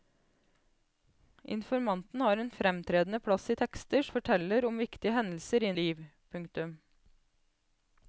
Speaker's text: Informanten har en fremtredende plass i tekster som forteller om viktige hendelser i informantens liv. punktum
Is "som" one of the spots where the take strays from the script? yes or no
yes